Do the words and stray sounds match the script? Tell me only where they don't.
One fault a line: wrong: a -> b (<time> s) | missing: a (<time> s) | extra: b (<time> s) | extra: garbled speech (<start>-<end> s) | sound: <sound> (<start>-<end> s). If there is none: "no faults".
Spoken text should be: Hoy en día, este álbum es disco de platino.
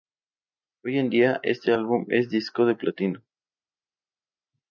no faults